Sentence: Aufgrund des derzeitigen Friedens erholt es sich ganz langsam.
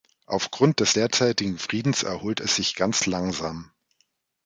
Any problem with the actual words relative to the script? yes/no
no